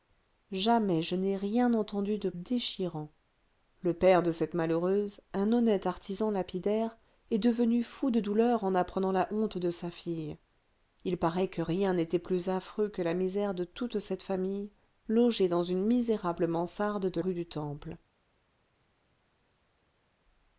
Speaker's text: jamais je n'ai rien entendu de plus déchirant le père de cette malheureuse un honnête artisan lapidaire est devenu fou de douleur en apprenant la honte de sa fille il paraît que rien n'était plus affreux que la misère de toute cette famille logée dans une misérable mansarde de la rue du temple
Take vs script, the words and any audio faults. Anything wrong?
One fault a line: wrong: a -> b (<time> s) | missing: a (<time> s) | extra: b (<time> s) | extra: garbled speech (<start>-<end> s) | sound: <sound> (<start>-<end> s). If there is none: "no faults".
missing: plus (2.3 s)
missing: la (17.2 s)